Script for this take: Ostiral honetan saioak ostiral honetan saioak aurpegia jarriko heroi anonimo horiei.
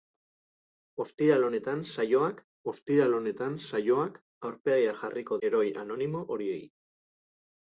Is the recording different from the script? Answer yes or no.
no